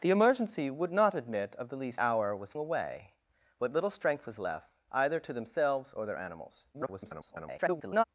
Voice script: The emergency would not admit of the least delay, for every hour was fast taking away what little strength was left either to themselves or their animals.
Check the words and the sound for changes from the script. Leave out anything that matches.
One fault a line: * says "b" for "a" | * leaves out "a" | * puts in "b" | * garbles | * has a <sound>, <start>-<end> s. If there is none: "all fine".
* leaves out "delay for every"
* leaves out "fast taking"
* garbles